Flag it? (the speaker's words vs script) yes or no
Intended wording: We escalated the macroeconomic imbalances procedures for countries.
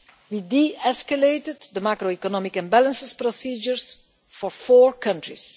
yes